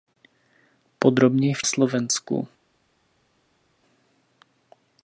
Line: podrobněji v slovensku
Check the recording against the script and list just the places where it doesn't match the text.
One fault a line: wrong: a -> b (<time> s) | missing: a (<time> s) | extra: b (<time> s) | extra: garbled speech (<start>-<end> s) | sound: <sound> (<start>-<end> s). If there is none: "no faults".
no faults